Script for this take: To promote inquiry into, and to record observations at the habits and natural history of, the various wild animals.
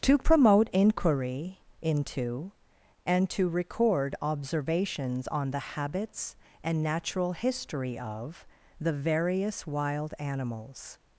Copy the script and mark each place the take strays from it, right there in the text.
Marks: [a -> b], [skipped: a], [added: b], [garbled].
To promote inquiry into, and to record observations [at -> on] the habits and natural history of, the various wild animals.